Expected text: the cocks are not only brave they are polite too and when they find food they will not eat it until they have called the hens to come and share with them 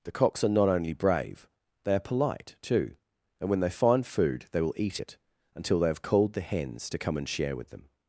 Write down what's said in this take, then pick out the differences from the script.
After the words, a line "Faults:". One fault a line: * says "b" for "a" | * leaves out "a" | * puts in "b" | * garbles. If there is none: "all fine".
the cocks are not only brave they are polite too and when they find food they will eat it until they have called the hens to come and share with them
Faults:
* leaves out "not"